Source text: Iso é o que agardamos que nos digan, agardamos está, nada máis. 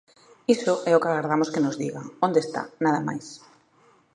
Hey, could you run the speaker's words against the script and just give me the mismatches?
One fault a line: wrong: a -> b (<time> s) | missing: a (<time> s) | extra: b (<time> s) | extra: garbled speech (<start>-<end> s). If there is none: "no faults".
wrong: agardamos -> onde (2.2 s)